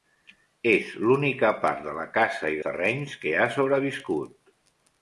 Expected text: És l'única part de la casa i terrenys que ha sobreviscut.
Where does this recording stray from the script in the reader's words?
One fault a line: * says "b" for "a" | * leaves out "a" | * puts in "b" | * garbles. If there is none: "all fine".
all fine